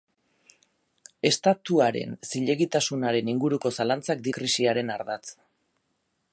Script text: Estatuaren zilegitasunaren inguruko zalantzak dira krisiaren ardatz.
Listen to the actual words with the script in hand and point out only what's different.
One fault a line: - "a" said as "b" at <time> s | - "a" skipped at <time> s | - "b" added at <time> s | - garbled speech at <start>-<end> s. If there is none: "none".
- "dira" skipped at 4.3 s